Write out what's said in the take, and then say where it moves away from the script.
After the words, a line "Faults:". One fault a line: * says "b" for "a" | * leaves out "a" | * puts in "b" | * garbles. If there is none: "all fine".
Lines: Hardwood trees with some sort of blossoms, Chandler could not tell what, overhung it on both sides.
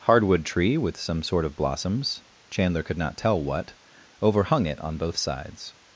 Hardwood tree with some sort of blossoms, Chandler could not tell what, overhung it on both sides.
Faults:
* says "tree" for "trees"